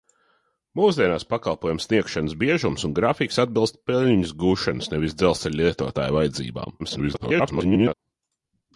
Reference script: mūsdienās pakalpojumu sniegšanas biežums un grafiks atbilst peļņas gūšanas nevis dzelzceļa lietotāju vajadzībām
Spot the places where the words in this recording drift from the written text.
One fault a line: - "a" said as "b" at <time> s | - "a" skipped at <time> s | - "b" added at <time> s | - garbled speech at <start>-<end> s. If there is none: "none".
- garbled speech at 6.8-7.9 s